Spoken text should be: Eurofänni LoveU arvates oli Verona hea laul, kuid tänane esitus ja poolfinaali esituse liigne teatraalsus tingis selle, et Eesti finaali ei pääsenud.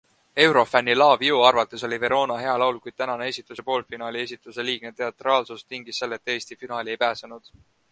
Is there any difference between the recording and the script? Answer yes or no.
no